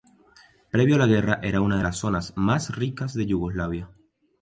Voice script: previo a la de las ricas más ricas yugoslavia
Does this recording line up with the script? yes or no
no